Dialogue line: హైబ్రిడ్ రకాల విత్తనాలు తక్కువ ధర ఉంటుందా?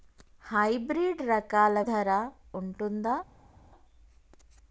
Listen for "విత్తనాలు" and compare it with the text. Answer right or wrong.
wrong